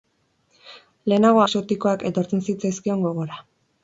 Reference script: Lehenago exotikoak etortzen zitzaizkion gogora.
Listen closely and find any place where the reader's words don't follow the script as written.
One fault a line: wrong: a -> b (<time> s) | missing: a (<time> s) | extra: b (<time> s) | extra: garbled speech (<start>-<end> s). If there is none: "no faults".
no faults